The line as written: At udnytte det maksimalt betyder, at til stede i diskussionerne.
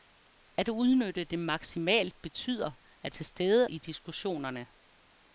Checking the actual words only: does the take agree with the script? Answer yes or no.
yes